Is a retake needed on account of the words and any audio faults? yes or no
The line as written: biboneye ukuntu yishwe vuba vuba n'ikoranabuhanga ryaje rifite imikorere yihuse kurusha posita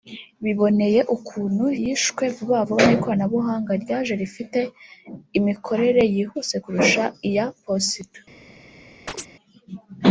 yes